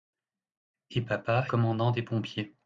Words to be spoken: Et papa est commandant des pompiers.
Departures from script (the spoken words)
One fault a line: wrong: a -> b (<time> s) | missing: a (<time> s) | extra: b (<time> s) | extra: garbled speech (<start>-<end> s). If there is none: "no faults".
missing: est (1.5 s)